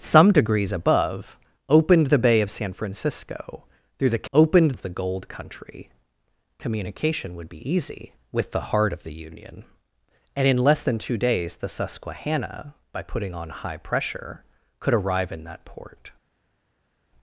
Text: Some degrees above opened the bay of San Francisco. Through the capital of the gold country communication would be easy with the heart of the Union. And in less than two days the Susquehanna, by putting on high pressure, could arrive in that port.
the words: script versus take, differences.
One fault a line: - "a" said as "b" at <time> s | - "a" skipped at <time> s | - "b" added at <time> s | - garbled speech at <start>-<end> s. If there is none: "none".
- "capital" said as "opened" at 4.3 s